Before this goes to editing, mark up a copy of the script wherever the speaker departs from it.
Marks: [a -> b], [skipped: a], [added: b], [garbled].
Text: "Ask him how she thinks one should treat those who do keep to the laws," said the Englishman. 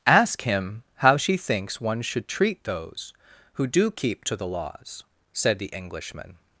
"Ask him how she thinks one should treat those who do keep to the laws," said the Englishman.